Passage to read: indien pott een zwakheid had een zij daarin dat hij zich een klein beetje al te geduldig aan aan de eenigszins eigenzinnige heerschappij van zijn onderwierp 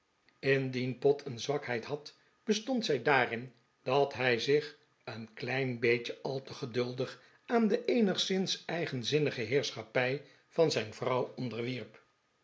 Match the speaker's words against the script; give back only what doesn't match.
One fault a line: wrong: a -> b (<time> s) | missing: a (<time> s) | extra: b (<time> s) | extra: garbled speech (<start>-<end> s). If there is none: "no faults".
wrong: een -> bestond (2.4 s)
missing: aan (7.7 s)
extra: vrouw (10.9 s)